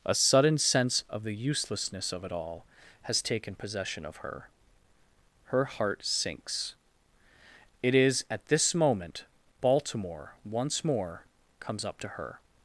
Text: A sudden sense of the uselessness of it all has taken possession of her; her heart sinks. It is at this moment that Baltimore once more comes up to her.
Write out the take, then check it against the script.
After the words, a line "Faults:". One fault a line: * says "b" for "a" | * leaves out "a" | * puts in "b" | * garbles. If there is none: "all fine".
A sudden sense of the uselessness of it all has taken possession of her; her heart sinks. It is at this moment Baltimore once more comes up to her.
Faults:
* leaves out "that"